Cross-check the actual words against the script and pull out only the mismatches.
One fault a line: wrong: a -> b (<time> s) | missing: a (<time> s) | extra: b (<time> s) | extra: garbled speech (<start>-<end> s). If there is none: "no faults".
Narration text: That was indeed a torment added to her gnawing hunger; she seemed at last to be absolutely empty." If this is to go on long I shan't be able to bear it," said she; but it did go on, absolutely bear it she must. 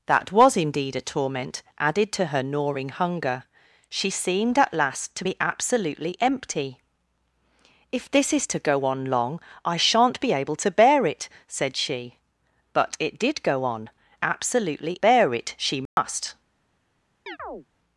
no faults